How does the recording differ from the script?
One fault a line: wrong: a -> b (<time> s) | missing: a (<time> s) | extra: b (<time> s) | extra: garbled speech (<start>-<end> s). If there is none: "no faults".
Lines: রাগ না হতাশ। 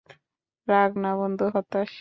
extra: বন্ধু (1.2 s)